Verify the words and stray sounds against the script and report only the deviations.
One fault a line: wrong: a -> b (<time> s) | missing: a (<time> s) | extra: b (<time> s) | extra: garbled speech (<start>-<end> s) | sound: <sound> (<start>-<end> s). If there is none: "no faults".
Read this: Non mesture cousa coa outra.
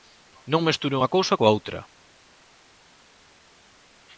extra: unha (1.0 s)